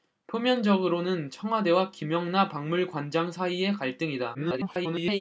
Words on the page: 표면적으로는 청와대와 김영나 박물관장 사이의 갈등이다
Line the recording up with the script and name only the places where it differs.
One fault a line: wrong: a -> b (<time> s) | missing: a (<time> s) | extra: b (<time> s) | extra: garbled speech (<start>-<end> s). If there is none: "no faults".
extra: garbled speech (4.3-5.2 s)